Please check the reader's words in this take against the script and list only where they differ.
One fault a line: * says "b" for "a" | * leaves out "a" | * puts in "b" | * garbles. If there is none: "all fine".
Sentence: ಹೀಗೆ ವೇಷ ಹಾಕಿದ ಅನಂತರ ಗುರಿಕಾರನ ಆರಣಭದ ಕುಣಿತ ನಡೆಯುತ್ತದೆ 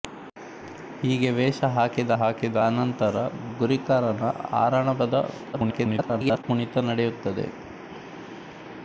* puts in "ಹಾಕಿದ"
* garbles